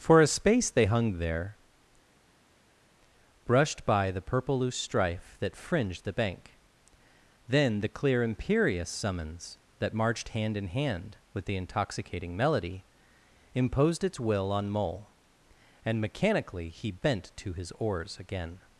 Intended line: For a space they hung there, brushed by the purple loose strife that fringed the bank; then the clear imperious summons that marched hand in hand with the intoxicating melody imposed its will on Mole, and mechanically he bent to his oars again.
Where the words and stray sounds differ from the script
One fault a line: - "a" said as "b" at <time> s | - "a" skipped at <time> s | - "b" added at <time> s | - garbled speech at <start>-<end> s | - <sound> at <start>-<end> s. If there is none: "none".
none